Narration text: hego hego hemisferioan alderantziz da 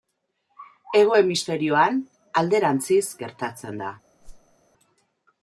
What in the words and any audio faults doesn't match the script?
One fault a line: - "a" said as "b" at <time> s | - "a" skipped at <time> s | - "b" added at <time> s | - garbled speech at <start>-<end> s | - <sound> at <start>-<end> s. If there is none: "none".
- "hego" skipped at 1.2 s
- "gertatzen" added at 3.2 s
- whoosh at 4.2-4.6 s